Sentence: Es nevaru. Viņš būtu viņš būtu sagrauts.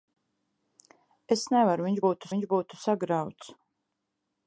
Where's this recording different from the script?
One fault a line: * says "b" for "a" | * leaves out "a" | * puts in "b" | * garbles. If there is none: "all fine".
all fine